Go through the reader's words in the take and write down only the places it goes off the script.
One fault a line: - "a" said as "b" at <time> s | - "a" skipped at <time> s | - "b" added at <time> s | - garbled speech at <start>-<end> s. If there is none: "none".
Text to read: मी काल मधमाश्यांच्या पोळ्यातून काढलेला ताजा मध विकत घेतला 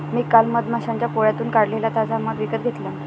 none